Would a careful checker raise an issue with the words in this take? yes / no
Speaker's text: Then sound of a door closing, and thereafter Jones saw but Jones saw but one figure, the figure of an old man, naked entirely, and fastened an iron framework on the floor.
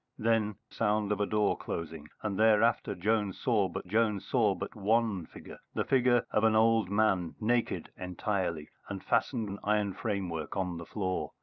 no